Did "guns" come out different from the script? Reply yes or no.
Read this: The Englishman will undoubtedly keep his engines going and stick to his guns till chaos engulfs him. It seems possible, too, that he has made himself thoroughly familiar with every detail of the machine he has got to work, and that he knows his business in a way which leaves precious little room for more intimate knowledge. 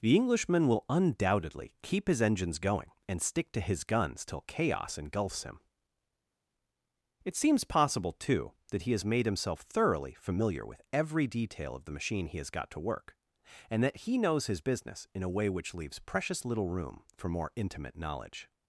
no